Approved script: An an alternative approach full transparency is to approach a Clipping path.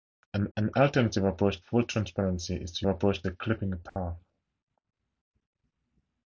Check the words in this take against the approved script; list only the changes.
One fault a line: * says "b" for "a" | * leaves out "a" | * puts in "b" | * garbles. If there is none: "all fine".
all fine